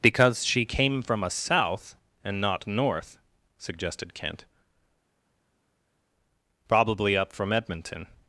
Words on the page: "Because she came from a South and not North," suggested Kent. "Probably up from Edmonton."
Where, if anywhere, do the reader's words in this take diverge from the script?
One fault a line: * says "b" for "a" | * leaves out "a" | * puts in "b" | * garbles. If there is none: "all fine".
all fine